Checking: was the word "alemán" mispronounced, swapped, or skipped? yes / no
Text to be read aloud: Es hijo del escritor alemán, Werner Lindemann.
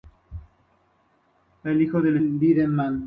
yes